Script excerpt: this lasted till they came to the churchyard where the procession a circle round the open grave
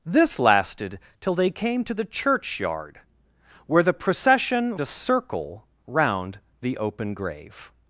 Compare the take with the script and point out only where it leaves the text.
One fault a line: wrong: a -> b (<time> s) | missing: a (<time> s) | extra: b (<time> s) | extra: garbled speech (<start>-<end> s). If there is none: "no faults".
no faults